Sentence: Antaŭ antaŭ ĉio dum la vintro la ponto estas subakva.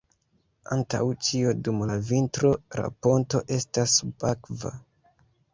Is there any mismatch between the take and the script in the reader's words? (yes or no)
yes